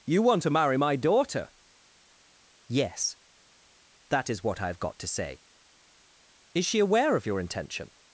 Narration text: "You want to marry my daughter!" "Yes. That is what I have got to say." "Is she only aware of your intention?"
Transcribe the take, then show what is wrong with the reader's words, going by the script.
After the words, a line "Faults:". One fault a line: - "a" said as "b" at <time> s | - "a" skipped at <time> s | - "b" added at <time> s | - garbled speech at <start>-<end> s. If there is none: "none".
"You want to marry my daughter!" "Yes. That is what I have got to say." "Is she aware of your intention?"
Faults:
- "only" skipped at 6.8 s